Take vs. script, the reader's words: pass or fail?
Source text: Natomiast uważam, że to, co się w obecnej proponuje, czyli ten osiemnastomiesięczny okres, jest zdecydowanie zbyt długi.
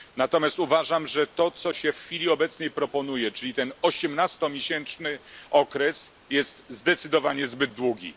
fail